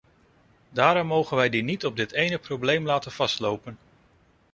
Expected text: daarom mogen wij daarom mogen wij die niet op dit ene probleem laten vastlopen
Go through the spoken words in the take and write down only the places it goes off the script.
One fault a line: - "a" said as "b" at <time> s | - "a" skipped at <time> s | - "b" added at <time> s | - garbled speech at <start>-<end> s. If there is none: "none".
- "daarom mogen wij" skipped at 1.5 s